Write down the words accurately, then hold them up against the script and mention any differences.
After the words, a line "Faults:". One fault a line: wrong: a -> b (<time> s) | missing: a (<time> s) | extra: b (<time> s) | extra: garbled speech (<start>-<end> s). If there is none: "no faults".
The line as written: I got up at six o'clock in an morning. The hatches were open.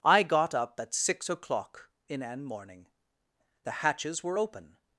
I got up at six o'clock in an morning. The hatches were open.
Faults:
no faults